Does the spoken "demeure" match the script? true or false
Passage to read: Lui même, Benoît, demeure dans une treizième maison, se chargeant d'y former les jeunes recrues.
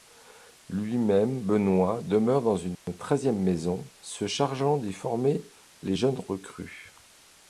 true